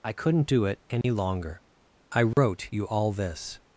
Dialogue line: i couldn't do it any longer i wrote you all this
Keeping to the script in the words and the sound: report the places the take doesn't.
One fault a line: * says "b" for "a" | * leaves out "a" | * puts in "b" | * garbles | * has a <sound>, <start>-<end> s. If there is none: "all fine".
* has a dropout, 1.0-1.0 s
* has a dropout, 2.3-2.4 s